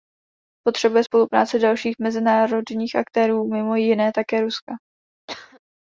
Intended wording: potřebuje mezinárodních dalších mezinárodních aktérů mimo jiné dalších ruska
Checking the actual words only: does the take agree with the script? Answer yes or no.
no